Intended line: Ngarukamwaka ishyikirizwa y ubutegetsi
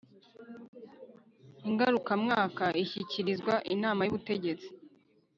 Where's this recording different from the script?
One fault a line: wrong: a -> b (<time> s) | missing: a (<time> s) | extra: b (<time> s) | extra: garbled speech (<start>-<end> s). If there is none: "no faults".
extra: inama (3.7 s)